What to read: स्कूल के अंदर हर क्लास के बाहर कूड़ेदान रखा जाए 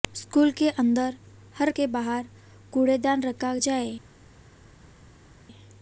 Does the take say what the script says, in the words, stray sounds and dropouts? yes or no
no